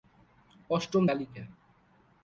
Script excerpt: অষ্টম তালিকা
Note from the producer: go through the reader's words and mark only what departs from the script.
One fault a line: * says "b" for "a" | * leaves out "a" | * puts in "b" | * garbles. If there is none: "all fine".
all fine